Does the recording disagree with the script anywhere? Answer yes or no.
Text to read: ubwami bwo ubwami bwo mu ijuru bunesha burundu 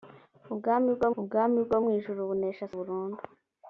no